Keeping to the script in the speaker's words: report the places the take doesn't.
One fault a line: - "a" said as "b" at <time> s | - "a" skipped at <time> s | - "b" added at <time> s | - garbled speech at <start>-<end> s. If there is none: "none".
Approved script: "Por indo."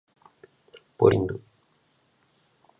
none